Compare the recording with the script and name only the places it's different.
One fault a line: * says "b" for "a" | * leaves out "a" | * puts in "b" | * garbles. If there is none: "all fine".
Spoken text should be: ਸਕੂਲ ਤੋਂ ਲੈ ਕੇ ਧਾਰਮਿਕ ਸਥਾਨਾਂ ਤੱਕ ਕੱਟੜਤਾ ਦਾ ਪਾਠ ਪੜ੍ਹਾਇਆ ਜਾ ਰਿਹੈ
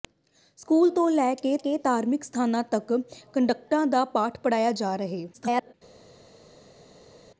* puts in "ਕੇ"
* garbles